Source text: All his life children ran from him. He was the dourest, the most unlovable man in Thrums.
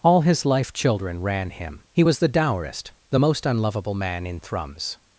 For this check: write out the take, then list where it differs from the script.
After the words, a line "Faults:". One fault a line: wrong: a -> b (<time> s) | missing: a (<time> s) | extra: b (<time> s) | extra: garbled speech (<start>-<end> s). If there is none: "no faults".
All his life children ran him. He was the dourest, the most unlovable man in Thrums.
Faults:
missing: from (1.5 s)